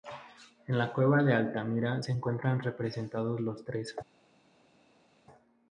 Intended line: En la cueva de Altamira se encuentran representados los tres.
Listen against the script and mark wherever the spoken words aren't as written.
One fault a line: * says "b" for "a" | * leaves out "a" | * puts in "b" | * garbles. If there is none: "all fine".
all fine